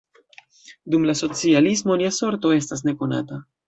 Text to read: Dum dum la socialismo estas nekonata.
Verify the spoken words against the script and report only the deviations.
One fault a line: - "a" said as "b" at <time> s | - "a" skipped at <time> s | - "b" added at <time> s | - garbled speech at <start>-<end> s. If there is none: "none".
- "dum" skipped at 1.1 s
- "lia sorto" added at 2.1 s